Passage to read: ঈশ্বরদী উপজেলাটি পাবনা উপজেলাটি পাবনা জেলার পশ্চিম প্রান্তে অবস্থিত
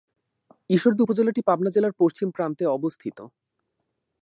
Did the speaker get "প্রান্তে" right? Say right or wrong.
right